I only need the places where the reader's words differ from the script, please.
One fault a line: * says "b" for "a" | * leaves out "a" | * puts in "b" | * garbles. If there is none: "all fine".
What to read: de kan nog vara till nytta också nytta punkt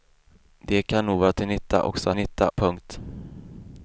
all fine